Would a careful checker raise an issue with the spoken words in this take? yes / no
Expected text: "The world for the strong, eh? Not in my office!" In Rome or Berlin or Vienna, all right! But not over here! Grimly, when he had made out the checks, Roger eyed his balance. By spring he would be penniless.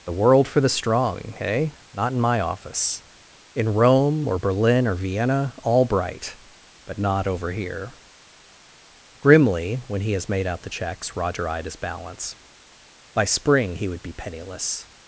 yes